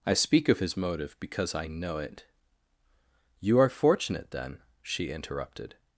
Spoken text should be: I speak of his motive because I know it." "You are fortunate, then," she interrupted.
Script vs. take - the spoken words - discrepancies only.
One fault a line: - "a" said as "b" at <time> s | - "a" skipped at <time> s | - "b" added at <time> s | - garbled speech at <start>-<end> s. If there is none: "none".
none